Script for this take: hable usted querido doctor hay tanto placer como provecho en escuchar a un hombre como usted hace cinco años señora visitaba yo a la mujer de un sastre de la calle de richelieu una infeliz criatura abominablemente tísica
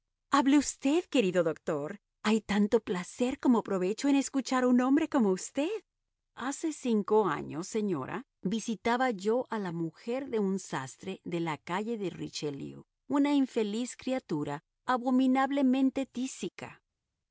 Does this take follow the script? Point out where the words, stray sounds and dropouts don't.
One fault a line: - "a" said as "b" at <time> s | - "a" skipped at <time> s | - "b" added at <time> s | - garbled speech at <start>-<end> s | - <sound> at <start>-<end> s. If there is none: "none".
none